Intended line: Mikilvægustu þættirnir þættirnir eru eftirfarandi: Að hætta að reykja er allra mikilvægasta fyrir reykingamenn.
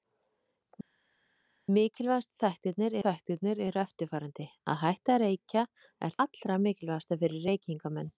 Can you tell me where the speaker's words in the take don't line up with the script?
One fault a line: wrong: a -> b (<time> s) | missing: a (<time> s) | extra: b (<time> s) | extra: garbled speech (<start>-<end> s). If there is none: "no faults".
no faults